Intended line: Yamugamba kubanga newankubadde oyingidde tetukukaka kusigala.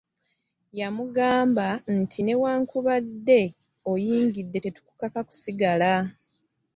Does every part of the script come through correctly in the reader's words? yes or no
no